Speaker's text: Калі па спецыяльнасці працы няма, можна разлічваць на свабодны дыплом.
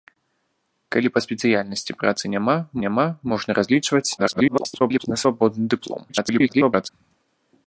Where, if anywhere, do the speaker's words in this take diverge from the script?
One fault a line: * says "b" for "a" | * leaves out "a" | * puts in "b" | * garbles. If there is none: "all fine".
* puts in "няма"
* garbles
* garbles